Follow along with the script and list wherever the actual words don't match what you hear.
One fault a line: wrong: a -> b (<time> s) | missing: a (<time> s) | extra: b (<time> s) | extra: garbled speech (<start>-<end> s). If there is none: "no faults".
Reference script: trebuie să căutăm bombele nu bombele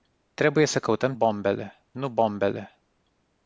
no faults